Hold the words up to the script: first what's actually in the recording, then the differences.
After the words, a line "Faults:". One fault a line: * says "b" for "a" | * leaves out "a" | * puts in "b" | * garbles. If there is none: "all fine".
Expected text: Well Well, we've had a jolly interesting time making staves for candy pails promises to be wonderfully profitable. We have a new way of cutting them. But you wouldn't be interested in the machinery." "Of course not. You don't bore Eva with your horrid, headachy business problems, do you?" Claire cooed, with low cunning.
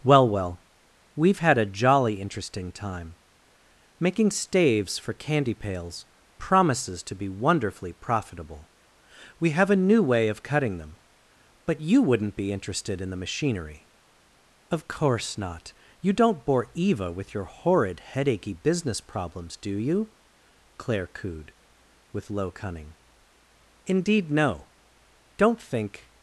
Well Well, we've had a jolly interesting time making staves for candy pails promises to be wonderfully profitable. We have a new way of cutting them. But you wouldn't be interested in the machinery." "Of course not. You don't bore Eva with your horrid, headachy business problems, do you?" Claire cooed, with low cunning. "Indeed no. Don't think
Faults:
* puts in "Indeed no Don't think"